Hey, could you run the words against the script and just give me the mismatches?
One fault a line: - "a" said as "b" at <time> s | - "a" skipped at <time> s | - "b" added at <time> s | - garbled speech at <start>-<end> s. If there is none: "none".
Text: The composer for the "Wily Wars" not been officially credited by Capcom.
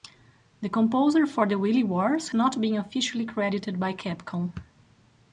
none